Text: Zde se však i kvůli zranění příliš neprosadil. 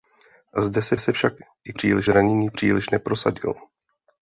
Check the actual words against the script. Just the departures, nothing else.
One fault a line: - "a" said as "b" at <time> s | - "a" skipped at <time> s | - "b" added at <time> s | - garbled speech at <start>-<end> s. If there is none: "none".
- "se" added at 1.0 s
- "kvůli" said as "příliš" at 1.7 s